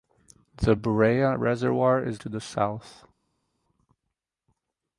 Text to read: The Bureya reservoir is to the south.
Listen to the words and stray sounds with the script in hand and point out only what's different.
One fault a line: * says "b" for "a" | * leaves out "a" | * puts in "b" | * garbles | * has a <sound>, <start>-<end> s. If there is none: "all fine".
all fine